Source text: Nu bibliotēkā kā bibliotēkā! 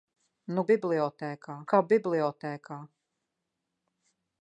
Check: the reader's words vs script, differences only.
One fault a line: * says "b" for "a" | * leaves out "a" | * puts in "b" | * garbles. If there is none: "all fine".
all fine